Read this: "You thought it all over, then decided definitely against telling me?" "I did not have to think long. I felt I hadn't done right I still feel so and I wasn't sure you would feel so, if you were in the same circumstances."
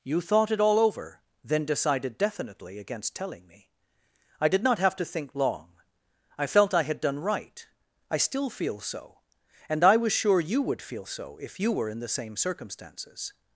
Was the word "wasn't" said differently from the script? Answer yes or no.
yes